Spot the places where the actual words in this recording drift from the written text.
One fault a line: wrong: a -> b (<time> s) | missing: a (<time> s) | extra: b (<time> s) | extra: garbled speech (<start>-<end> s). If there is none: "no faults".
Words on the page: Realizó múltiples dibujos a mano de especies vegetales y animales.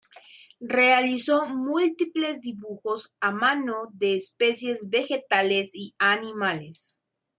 no faults